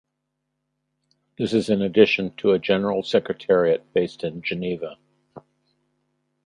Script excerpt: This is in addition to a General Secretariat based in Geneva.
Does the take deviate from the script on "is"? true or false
false